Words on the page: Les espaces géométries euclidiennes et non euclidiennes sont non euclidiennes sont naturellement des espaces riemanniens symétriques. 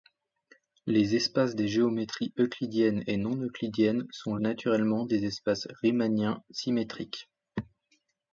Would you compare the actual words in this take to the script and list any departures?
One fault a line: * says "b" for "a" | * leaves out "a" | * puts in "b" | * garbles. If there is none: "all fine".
* puts in "des"
* leaves out "non euclidiennes sont"